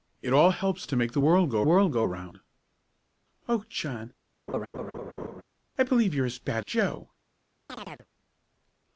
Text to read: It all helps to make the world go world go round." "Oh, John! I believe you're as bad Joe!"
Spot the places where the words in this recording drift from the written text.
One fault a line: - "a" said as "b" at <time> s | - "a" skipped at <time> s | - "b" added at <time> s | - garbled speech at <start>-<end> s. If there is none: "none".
none